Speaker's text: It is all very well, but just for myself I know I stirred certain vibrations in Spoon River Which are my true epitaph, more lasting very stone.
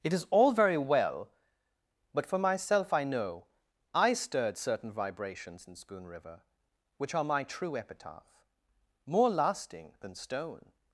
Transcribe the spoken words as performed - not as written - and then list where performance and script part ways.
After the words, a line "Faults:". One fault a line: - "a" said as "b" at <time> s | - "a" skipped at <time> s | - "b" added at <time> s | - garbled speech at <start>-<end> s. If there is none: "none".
It is all very well, but for myself I know I stirred certain vibrations in Spoon River Which are my true epitaph, more lasting than stone.
Faults:
- "just" skipped at 2.2 s
- "very" said as "than" at 10.0 s